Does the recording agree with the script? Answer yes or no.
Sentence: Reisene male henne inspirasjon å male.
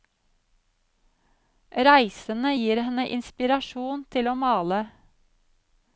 no